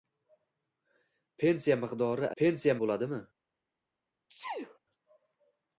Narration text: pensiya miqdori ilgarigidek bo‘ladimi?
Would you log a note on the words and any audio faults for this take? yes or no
yes